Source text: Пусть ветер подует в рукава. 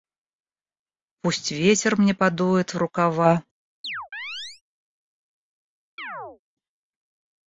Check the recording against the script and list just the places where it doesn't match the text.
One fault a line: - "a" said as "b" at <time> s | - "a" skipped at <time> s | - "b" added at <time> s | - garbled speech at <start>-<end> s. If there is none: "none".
- "мне" added at 2.0 s